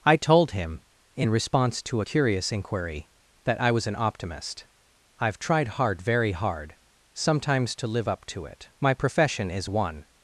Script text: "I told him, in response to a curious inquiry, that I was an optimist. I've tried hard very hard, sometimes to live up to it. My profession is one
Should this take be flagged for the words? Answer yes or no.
no